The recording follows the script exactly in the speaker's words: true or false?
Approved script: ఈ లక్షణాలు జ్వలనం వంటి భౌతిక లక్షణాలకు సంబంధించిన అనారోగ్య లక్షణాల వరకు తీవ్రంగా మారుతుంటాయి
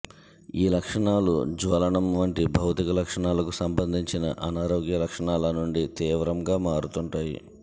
false